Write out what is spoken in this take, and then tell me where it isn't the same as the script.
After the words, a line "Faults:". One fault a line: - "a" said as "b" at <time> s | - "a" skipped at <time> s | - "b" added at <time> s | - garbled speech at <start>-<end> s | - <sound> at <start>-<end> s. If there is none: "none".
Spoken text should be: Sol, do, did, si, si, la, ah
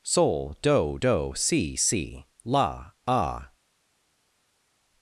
Sol, do, do, si, si, la, ah
Faults:
- "did" said as "do" at 0.9 s